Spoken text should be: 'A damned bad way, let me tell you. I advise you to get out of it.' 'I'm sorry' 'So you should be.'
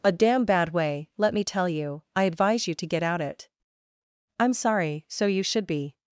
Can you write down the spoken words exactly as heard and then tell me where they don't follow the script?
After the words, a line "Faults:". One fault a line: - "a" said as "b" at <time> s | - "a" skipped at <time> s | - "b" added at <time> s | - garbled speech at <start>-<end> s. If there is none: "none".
'A damn bad way, let me tell you. I advise you to get out it.' 'I'm sorry' 'So you should be.'
Faults:
- "damned" said as "damn" at 0.1 s
- "of" skipped at 3.2 s